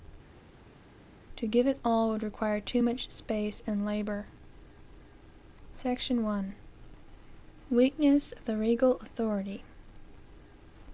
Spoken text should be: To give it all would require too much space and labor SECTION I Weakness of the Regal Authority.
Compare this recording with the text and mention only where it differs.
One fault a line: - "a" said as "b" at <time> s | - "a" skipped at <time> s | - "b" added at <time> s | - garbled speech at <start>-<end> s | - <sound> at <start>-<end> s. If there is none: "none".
none